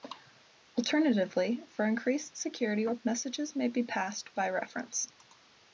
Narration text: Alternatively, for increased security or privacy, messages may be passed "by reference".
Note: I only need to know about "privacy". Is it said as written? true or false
false